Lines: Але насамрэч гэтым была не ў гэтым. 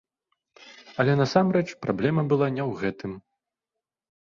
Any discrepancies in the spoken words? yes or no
yes